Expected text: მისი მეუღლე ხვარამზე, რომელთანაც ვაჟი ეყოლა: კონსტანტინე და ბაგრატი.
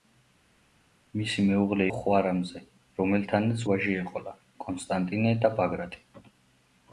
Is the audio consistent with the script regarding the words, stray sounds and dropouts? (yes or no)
yes